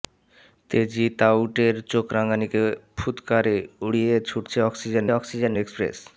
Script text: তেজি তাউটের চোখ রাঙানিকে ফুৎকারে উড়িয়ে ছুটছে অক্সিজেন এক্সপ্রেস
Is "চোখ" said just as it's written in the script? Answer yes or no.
yes